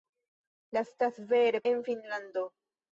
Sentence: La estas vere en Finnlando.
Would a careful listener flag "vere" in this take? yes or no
no